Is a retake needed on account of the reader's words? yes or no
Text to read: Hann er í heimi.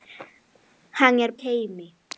no